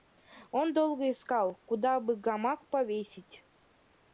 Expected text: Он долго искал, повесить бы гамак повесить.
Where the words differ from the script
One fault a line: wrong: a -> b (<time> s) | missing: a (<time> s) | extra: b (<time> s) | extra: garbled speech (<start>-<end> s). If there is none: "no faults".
wrong: повесить -> куда (1.6 s)